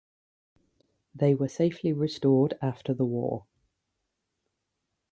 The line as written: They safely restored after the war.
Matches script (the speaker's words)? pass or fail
fail